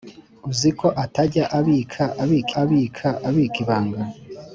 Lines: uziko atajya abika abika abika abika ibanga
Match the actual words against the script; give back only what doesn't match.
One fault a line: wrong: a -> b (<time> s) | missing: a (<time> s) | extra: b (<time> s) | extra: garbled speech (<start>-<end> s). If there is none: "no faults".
no faults